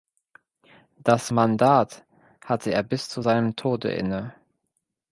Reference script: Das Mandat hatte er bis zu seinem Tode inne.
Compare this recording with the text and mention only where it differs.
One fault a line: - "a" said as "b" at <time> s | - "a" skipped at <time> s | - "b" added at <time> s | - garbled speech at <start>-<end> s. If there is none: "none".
none